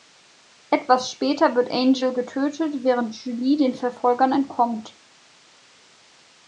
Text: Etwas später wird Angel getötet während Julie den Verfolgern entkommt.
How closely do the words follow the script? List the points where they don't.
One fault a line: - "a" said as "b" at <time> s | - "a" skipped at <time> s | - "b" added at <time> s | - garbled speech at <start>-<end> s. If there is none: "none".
none